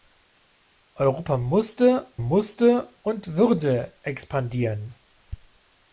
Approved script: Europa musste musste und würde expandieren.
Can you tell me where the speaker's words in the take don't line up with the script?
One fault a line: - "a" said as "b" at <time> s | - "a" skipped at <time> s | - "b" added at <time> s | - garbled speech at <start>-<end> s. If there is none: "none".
none